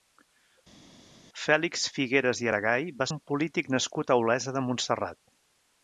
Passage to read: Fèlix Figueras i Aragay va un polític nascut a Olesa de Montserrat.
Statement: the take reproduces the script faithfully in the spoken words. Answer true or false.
true